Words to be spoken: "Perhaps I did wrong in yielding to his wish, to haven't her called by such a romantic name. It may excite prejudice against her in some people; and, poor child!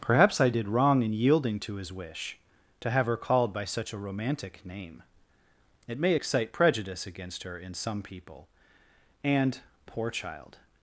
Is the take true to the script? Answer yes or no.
no